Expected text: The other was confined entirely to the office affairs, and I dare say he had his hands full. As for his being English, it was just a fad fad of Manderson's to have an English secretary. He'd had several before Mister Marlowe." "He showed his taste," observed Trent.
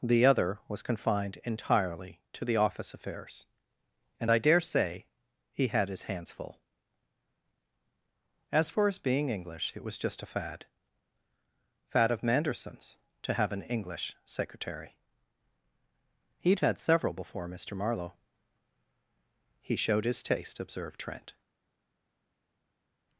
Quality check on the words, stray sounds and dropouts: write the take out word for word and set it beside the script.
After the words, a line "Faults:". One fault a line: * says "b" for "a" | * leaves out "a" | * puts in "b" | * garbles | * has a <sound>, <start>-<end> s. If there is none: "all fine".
The other was confined entirely to the office affairs, and I dare say he had his hands full. As for his being English, it was just a fad fad of Manderson's to have an English secretary. He'd had several before Mister Marlowe." "He showed his taste," observed Trent.
Faults:
all fine